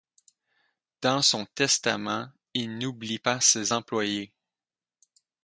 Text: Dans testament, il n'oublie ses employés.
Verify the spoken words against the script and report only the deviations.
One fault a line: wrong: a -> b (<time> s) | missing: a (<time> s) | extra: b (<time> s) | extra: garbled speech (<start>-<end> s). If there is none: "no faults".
extra: son (1.2 s)
extra: pas (3.2 s)